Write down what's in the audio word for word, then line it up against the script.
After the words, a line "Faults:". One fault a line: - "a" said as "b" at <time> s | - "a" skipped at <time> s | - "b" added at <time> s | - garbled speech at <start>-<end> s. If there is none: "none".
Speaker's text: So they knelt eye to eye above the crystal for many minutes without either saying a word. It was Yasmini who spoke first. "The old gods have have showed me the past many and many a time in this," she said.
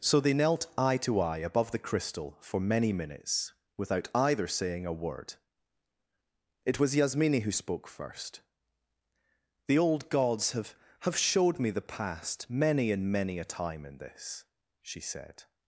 So they knelt eye to eye above the crystal for many minutes without either saying a word. It was Yasmini who spoke first. "The old gods have have showed me the past many and many a time in this," she said.
Faults:
none